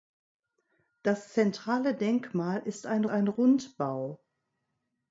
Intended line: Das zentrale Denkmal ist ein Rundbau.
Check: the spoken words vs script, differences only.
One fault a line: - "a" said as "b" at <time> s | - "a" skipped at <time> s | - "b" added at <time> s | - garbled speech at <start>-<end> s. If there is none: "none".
- "ein" added at 3.1 s